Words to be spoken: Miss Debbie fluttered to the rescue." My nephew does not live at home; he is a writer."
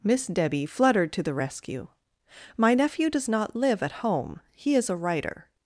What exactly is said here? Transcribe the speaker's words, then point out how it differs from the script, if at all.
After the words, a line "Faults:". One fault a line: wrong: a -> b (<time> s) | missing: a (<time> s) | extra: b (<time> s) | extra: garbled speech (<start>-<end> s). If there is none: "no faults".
Miss Debbie fluttered to the rescue." My nephew does not live at home; he is a writer."
Faults:
no faults